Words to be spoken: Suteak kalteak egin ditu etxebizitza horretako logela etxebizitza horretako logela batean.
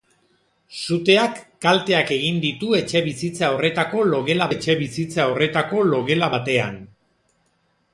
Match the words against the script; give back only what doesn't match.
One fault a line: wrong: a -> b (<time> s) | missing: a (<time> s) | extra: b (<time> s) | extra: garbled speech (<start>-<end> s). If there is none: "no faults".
no faults